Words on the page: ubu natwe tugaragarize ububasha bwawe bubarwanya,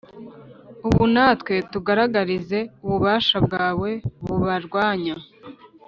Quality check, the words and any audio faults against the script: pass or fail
pass